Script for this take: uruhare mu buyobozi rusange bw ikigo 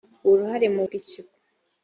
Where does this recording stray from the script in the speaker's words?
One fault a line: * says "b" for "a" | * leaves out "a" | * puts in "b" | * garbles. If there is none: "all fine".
* leaves out "buyobozi rusange"